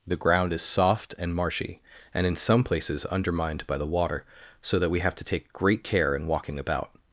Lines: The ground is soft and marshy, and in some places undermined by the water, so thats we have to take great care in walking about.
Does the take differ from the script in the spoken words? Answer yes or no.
yes